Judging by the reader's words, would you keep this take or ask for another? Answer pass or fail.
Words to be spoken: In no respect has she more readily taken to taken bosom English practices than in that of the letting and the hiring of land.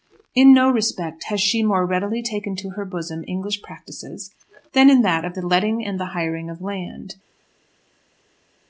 fail